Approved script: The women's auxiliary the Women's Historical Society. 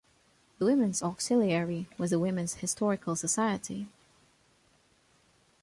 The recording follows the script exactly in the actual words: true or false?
false